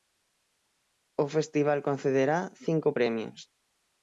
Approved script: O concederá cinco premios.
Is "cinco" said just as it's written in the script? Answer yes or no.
yes